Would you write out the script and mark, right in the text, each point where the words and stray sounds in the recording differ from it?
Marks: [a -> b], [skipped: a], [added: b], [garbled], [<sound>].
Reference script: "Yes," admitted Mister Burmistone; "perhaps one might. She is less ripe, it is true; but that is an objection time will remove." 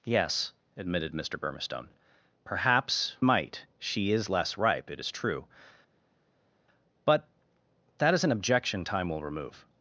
"Yes," admitted Mister Burmistone; "perhaps [skipped: one] might. She is less ripe, it is true; but that is an objection time will remove."